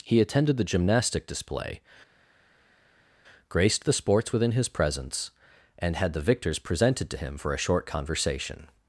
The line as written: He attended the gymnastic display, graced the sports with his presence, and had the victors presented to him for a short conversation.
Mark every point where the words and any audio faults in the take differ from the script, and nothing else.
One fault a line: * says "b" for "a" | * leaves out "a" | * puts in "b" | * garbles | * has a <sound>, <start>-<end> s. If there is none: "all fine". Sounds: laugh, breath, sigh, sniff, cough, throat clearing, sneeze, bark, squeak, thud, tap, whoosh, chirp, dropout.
* says "within" for "with"